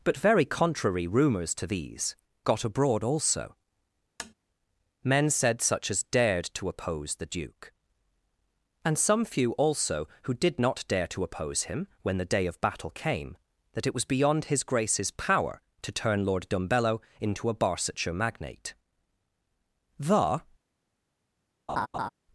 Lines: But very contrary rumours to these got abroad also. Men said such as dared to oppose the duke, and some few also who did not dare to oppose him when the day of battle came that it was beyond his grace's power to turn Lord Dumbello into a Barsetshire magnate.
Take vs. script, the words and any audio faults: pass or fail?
fail